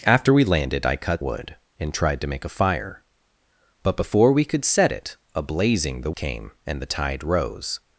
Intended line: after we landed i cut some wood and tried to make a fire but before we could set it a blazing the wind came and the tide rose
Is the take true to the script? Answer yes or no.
no